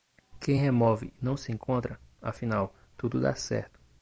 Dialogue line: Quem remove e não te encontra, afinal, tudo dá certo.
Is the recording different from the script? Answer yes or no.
yes